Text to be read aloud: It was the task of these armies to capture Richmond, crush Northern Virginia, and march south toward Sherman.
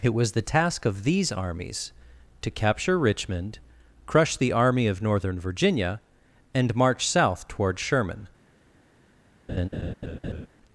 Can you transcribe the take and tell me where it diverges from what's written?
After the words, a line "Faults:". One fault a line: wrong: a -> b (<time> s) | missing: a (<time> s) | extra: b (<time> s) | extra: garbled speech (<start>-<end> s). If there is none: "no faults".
It was the task of these armies to capture Richmond, crush the Army of Northern Virginia, and march south toward Sherman.
Faults:
extra: the Army of (4.3 s)